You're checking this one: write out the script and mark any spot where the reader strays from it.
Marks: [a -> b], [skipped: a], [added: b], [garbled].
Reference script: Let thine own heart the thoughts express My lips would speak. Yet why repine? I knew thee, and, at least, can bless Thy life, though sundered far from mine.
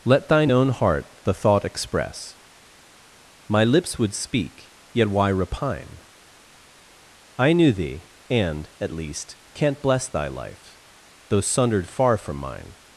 Let thine own heart the [thoughts -> thought] express My lips would speak. Yet why repine? I knew thee, and, at least, [can -> can't] bless Thy life, though sundered far from mine.